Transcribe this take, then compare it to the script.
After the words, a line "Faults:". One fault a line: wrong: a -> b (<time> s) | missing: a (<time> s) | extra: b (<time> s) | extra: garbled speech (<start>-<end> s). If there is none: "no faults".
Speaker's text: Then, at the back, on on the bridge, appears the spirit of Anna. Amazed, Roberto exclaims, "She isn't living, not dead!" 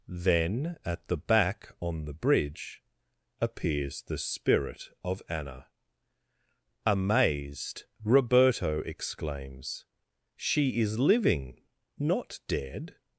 Then, at the back, on the bridge, appears the spirit of Anna. Amazed, Roberto exclaims, "She is living, not dead!"
Faults:
missing: on (2.0 s)
wrong: isn't -> is (10.8 s)